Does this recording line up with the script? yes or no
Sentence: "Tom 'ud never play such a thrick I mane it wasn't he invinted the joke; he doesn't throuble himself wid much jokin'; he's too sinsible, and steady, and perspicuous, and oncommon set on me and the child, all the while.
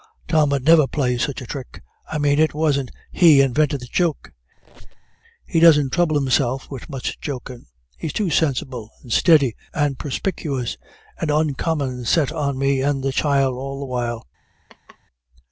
yes